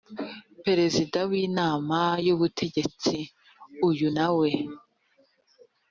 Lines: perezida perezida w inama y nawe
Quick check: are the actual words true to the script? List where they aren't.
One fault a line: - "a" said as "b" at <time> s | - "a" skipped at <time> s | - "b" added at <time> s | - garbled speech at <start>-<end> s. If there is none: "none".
- "perezida" skipped at 1.2 s
- "ubutegetsi uyu" added at 2.3 s